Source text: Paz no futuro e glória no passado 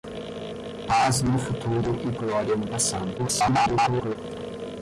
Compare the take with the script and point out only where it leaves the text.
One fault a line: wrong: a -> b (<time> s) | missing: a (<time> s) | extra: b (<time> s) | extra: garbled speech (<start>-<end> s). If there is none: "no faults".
extra: garbled speech (3.2-4.2 s)